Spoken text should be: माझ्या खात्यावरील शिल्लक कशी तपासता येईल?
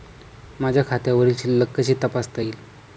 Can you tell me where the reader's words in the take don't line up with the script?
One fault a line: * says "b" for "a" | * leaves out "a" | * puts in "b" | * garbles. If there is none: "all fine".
all fine